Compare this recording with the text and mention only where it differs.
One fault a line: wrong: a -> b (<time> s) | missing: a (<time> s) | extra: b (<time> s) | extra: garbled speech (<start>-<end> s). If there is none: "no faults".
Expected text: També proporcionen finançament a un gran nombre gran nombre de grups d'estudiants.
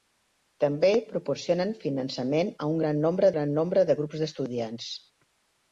no faults